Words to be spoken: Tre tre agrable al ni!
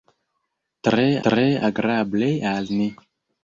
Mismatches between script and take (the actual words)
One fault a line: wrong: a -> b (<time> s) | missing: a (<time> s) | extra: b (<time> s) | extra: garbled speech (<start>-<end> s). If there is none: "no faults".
no faults